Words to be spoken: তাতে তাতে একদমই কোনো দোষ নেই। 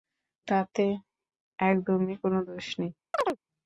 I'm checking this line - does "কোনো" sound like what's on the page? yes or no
yes